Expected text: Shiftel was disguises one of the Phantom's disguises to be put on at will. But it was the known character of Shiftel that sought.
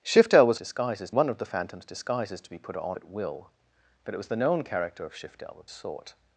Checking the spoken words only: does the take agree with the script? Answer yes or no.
yes